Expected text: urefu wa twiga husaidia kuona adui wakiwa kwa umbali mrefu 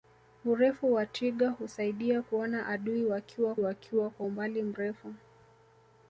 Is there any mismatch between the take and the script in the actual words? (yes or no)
yes